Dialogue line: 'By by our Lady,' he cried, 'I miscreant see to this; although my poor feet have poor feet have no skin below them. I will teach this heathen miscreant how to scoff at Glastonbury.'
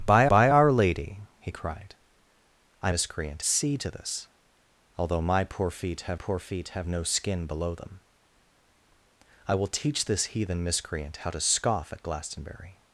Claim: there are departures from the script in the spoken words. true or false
false